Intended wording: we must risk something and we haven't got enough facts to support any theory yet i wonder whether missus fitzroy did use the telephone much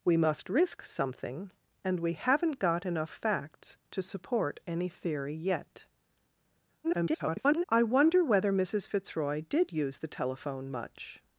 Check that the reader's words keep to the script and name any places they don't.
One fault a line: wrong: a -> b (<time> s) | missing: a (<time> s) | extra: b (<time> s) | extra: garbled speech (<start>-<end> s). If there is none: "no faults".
extra: garbled speech (6.8-7.6 s)